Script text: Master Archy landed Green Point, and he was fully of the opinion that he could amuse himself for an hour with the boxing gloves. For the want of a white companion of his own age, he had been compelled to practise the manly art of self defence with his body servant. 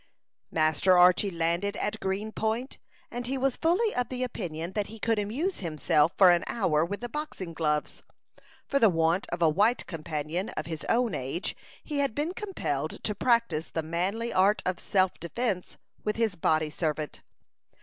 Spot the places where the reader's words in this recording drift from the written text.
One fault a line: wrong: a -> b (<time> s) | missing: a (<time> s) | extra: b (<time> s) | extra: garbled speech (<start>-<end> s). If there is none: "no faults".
extra: at (1.8 s)